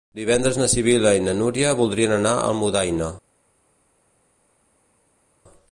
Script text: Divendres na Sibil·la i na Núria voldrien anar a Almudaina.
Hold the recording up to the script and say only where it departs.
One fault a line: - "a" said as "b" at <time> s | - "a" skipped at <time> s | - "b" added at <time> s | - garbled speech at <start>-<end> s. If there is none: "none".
none